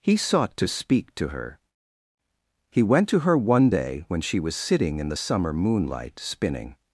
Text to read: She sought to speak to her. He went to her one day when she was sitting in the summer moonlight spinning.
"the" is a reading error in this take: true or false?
false